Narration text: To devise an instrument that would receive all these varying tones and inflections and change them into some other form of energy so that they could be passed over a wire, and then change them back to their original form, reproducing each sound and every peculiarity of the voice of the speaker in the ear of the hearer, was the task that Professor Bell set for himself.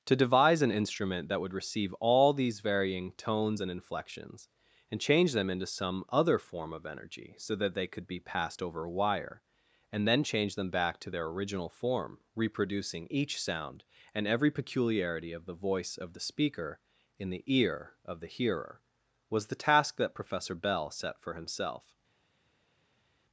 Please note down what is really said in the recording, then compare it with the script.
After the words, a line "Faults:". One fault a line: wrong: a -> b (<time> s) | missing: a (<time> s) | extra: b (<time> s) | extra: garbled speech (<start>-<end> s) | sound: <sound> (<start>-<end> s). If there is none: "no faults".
To devise an instrument that would receive all these varying tones and inflections and change them into some other form of energy so that they could be passed over a wire, and then change them back to their original form, reproducing each sound and every peculiarity of the voice of the speaker in the ear of the hearer, was the task that Professor Bell set for himself.
Faults:
no faults